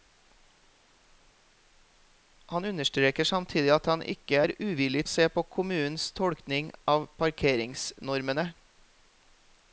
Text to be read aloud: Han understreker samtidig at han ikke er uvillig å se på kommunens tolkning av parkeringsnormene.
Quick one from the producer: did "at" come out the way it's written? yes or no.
yes